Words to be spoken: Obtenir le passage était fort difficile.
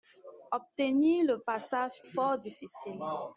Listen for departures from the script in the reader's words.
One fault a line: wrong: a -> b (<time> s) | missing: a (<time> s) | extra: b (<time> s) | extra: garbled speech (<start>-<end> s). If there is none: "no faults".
missing: était (2.0 s)